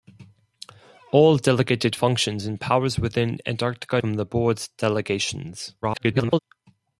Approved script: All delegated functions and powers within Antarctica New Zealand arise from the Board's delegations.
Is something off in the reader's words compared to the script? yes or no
yes